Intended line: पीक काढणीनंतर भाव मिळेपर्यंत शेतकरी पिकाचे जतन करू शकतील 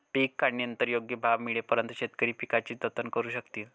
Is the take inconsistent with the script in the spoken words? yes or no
yes